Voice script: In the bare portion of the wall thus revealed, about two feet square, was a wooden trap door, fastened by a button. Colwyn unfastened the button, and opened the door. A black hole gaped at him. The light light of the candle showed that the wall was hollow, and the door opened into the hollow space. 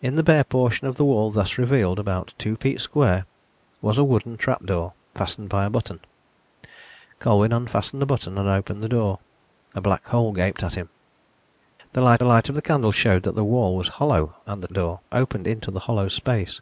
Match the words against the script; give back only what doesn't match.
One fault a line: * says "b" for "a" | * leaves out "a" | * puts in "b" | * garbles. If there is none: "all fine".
all fine